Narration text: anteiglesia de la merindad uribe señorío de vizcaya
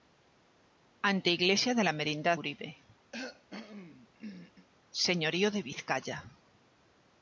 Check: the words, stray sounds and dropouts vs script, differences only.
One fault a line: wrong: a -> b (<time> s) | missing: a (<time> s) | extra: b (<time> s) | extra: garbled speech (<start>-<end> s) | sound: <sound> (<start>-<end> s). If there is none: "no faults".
sound: cough (3.1-4.7 s)